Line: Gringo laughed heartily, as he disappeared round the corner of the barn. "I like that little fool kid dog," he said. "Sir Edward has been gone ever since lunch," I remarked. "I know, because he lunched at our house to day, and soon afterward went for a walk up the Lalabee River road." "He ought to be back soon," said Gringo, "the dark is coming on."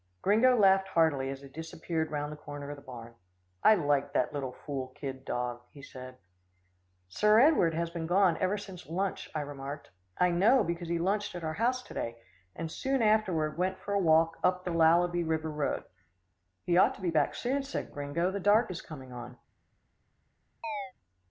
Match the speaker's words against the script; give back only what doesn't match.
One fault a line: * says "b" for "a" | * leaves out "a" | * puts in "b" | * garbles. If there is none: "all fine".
all fine